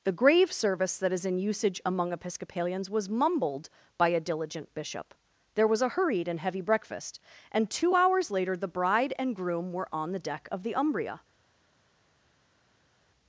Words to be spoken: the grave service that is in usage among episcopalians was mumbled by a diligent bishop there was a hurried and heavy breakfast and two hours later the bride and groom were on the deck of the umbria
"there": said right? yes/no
yes